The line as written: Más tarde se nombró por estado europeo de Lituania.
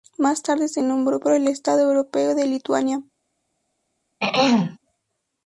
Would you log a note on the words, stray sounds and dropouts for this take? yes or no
yes